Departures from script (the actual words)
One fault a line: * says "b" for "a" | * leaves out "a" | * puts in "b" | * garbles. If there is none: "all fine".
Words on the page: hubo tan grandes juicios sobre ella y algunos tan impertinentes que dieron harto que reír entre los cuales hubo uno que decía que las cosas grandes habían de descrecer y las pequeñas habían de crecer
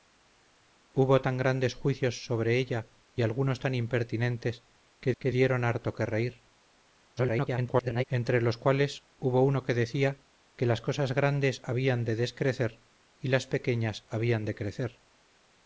* puts in "que"
* garbles